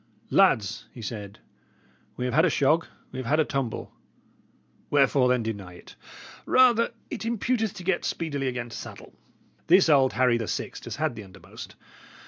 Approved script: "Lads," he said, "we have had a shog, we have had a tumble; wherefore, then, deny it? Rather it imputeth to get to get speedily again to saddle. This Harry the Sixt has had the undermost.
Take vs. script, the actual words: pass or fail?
fail